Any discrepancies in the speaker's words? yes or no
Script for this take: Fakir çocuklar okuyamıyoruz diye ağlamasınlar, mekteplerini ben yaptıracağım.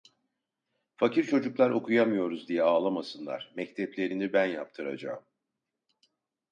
no